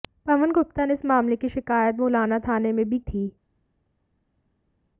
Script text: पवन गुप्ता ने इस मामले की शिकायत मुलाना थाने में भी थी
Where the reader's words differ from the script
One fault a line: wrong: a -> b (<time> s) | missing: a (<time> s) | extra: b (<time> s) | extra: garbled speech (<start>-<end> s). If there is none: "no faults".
no faults